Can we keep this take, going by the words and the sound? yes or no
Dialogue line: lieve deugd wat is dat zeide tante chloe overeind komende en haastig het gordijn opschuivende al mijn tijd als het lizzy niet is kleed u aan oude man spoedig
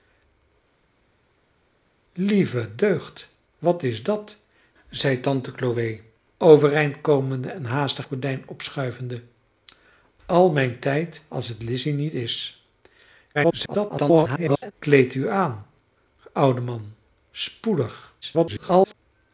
no